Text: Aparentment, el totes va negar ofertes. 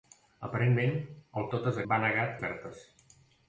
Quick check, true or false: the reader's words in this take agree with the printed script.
true